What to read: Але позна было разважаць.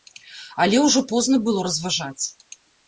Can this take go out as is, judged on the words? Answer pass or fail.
fail